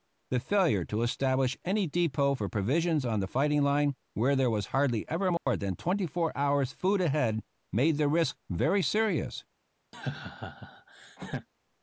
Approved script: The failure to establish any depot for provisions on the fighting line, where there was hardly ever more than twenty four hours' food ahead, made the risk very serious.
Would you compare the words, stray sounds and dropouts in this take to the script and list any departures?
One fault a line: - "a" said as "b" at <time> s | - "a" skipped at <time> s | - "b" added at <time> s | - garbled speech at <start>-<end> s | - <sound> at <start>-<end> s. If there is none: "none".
- dropout at 5.4-5.5 s
- laugh at 9.9-11.5 s